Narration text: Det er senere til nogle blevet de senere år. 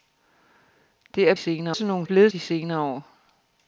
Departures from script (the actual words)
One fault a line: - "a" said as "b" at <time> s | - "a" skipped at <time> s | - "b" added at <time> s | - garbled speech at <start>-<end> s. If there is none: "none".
none